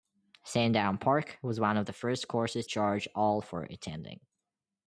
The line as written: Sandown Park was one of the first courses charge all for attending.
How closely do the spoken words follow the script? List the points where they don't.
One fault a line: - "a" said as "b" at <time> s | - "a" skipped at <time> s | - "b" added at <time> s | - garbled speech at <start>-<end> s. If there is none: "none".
none